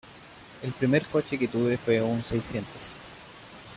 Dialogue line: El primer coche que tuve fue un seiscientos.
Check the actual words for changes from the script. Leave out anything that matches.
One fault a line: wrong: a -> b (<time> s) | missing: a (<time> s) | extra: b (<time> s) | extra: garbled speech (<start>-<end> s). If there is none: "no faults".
no faults